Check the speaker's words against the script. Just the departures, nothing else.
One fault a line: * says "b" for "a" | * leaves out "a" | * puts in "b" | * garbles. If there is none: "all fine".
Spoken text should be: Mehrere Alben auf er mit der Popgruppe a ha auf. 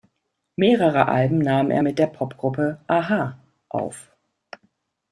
* says "nahm" for "auf"